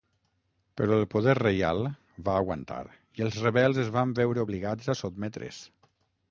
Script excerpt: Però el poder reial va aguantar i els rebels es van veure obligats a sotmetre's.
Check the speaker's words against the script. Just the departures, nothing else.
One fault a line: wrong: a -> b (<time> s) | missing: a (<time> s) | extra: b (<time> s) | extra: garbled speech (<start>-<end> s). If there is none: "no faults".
no faults